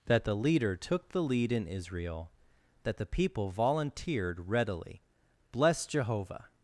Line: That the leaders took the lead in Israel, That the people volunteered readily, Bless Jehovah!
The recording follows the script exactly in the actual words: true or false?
false